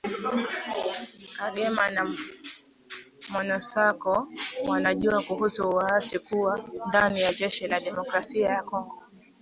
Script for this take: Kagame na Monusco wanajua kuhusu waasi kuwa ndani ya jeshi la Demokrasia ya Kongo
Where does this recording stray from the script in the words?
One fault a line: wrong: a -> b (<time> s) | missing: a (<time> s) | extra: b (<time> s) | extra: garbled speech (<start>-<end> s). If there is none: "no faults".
no faults